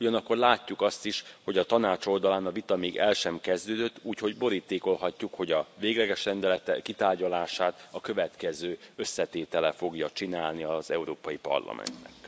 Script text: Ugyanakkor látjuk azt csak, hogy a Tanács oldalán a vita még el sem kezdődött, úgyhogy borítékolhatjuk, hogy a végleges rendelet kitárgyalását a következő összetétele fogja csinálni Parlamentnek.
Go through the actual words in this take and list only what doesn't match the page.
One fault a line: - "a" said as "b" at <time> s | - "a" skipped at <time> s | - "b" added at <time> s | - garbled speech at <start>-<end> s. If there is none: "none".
- "csak" said as "is" at 1.1 s
- "az Európai" added at 10.6 s